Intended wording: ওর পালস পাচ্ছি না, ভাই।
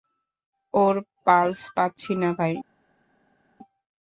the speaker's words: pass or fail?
pass